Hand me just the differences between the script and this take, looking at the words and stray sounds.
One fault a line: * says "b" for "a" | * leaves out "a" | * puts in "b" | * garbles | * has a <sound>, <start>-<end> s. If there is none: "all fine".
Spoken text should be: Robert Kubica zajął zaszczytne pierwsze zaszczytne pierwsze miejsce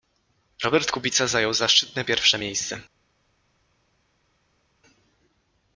* leaves out "zaszczytne pierwsze"